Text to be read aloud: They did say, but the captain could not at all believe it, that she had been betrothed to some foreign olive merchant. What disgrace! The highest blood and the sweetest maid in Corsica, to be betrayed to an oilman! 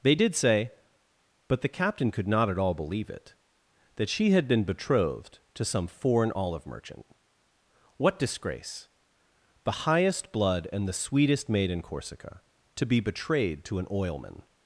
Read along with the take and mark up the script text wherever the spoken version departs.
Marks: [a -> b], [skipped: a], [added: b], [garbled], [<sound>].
They did say, but the captain could not at all believe it, that she had been betrothed to some foreign olive merchant. What disgrace! The highest blood and the sweetest maid in Corsica, to be betrayed to an oilman!